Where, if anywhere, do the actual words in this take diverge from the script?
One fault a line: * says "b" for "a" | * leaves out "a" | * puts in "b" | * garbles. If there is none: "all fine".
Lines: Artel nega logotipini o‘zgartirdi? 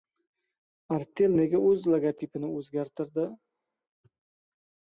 * puts in "o‘z"